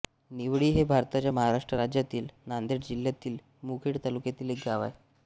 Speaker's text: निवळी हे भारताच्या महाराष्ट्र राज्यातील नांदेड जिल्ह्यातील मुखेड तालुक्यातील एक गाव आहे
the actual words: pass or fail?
pass